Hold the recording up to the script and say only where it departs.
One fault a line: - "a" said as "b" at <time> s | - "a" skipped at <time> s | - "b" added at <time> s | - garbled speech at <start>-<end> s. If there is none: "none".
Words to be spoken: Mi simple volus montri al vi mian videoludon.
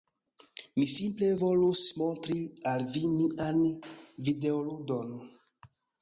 none